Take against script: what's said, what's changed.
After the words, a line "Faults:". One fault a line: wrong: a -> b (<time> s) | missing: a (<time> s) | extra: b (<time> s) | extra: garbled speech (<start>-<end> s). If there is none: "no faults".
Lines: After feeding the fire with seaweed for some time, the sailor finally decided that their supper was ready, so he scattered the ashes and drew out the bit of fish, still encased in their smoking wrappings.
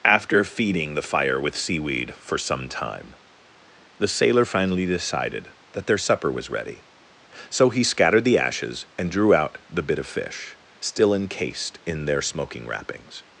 After feeding the fire with seaweed for some time, the sailor finally decided that their supper was ready, so he scattered the ashes and drew out the bit of fish, still encased in their smoking wrappings.
Faults:
no faults